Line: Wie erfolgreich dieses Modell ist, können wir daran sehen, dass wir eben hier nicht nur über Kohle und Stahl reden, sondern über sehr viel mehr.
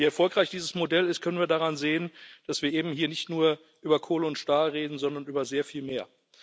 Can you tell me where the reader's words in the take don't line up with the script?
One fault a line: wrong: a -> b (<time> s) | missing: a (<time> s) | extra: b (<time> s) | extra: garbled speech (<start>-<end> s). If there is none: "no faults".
no faults